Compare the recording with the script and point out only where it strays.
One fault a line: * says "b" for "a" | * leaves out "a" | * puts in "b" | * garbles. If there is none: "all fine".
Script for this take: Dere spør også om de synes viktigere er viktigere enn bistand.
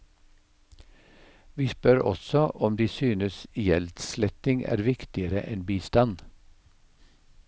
* says "Vi" for "Dere"
* says "gjeldssletting" for "viktigere"